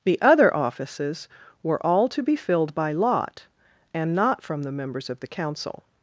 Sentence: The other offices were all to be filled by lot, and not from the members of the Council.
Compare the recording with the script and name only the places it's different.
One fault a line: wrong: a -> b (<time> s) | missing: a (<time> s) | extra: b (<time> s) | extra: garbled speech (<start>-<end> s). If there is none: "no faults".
no faults